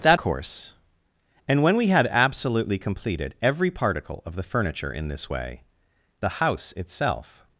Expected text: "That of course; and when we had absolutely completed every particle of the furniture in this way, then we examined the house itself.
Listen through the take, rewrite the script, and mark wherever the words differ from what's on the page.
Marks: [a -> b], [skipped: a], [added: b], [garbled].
"That [skipped: of] course; and when we had absolutely completed every particle of the furniture in this way, [skipped: then we examined] the house itself.